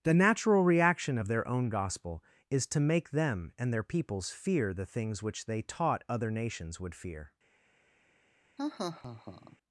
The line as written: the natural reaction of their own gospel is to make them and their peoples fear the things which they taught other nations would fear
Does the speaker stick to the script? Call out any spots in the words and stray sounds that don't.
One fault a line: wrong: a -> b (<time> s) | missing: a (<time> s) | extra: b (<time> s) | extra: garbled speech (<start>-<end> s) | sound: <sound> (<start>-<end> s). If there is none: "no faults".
sound: laugh (8.6-9.6 s)